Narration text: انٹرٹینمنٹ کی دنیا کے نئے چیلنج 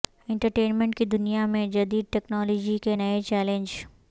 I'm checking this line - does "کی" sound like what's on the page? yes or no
yes